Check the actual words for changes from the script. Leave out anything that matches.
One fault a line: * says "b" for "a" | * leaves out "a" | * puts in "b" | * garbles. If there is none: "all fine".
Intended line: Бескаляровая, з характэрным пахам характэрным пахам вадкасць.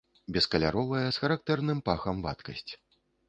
* leaves out "характэрным пахам"